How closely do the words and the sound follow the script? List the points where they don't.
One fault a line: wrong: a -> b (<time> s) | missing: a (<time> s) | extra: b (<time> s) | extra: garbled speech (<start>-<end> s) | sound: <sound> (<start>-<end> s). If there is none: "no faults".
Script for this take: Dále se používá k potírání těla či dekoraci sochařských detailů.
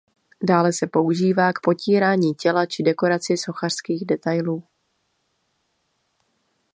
no faults